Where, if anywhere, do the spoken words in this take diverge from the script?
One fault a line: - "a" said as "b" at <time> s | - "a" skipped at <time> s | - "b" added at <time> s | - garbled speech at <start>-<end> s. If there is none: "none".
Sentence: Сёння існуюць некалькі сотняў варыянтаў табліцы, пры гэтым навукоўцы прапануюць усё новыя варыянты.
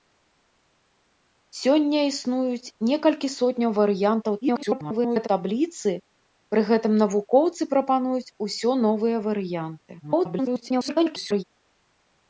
- garbled speech at 4.4-5.3 s
- garbled speech at 10.0-11.4 s